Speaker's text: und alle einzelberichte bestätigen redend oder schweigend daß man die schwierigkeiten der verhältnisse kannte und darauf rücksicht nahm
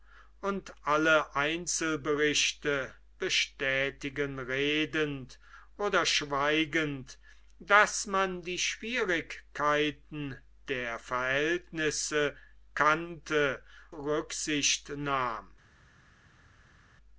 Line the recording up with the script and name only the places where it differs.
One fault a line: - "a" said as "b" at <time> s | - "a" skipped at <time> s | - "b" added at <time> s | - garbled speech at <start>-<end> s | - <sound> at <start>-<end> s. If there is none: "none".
- "und darauf" skipped at 13.6 s